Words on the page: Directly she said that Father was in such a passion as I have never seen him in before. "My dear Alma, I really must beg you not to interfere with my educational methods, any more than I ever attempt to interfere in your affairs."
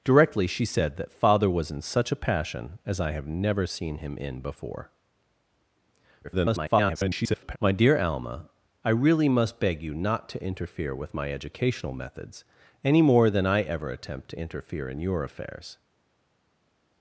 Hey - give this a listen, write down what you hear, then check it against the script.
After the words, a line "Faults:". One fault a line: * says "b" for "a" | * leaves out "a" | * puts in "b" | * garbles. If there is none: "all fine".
Directly she said that Father was in such a passion as I have never seen him in before. [garbled] "My dear Alma, I really must beg you not to interfere with my educational methods, any more than I ever attempt to interfere in your affairs."
Faults:
* garbles